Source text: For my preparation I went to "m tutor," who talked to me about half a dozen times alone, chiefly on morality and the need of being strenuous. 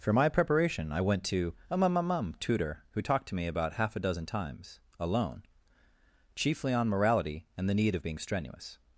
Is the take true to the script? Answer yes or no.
no